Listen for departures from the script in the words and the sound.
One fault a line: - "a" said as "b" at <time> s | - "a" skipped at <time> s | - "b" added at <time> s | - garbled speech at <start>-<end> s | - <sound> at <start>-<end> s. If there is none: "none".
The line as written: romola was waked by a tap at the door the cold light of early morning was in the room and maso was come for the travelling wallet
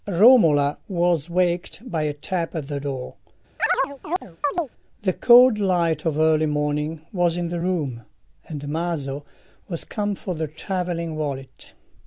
- chirp at 3.6-4.7 s